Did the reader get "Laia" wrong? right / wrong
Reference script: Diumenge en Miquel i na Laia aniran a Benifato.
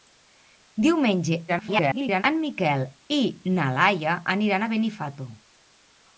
right